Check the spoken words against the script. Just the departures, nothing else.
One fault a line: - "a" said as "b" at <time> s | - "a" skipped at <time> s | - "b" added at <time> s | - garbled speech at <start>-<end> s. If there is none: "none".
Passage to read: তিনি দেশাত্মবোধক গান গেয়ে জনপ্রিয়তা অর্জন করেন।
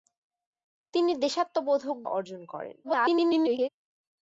- "গান গেয়ে জনপ্রিয়তা" skipped at 2.0 s
- garbled speech at 2.8-3.7 s